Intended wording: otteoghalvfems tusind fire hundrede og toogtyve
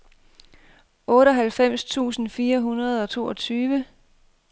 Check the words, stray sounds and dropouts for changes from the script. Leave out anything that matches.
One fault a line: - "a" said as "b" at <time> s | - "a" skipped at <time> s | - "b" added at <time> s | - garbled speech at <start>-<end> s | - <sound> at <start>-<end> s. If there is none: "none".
none